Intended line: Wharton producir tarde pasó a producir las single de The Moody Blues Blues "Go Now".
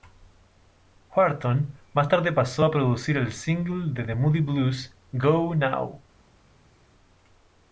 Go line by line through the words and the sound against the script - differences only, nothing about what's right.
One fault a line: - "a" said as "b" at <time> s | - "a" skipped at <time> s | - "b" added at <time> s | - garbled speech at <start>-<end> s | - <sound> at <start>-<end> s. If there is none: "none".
- "producir" said as "más" at 1.9 s
- "las" said as "el" at 3.2 s
- "Blues" skipped at 4.9 s